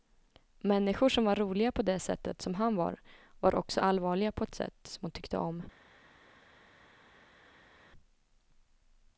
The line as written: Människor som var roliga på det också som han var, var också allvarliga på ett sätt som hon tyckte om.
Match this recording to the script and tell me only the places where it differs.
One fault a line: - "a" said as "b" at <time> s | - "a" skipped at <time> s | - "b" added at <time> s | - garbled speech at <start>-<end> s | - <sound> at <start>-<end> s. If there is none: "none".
- "också" said as "sättet" at 2.0 s